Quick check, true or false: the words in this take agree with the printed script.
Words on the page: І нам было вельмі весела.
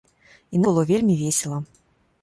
false